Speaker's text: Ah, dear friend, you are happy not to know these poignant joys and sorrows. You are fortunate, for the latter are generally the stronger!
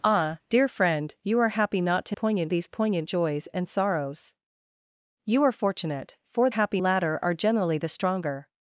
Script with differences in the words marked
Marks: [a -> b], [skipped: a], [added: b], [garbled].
Ah, dear friend, you are happy not to [know -> poignant] these poignant joys and sorrows. You are fortunate, for [the -> happy] latter are generally the stronger!